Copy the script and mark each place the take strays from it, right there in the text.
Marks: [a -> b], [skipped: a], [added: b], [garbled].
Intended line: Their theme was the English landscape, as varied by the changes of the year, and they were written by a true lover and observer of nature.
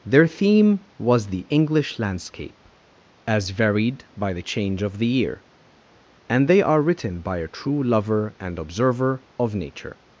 Their theme was the English landscape, as varied by the [changes -> change] of the year, and they [were -> are] written by a true lover and observer of nature.